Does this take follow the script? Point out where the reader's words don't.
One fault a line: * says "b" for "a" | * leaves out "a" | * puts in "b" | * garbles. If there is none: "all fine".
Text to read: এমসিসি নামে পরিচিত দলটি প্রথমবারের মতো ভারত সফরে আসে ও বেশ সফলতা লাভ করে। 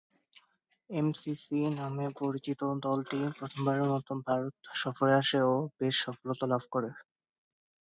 all fine